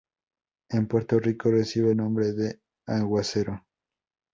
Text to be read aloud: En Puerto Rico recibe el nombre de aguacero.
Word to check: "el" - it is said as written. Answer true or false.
false